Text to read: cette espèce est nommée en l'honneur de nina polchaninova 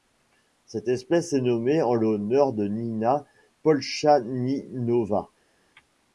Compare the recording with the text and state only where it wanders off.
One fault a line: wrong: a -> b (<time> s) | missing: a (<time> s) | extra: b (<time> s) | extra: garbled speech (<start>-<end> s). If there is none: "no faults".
no faults